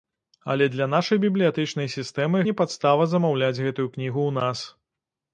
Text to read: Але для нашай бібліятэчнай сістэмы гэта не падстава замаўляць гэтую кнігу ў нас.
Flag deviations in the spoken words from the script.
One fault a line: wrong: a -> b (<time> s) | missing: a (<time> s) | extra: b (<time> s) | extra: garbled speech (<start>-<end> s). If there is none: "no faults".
missing: гэта (2.4 s)